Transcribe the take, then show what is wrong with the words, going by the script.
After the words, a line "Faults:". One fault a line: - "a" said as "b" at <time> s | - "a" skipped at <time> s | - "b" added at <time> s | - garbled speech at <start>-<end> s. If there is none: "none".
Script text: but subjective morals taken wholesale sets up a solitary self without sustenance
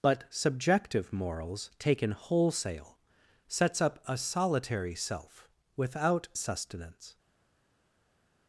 but subjective morals taken wholesale sets up a solitary self without sustenance
Faults:
none